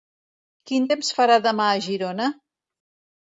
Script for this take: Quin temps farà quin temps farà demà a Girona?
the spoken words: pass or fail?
fail